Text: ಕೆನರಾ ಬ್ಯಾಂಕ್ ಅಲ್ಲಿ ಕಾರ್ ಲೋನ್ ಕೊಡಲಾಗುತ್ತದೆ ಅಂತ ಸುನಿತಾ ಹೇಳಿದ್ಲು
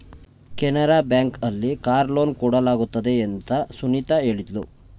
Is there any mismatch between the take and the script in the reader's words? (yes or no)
no